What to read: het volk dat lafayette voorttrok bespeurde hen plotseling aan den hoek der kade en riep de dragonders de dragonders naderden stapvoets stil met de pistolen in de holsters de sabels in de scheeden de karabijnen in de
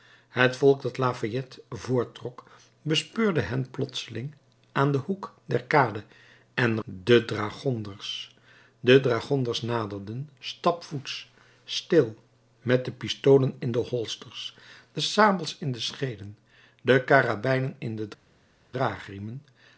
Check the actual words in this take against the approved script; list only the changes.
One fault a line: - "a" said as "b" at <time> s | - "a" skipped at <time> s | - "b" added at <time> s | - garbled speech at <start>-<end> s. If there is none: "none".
- "riep" skipped at 6.8 s